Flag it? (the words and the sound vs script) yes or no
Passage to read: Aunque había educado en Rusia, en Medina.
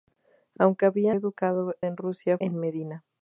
no